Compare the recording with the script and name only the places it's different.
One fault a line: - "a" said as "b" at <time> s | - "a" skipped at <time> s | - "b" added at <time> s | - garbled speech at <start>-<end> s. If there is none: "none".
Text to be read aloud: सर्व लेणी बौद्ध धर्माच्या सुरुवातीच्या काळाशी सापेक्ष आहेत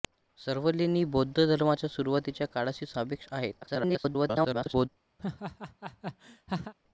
- garbled speech at 3.6-4.9 s